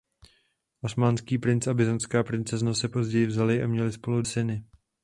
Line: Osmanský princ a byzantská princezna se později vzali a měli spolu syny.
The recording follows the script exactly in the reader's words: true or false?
true